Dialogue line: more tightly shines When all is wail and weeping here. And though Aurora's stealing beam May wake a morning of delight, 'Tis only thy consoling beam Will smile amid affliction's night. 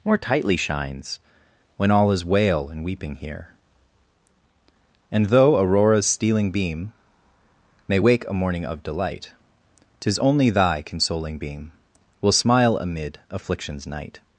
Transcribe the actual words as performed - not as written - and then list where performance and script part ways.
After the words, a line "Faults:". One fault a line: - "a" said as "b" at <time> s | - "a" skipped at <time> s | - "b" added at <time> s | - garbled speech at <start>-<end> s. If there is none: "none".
more tightly shines When all is wail and weeping here. And though Aurora's stealing beam May wake a morning of delight, 'Tis only thy consoling beam Will smile amid affliction's night.
Faults:
none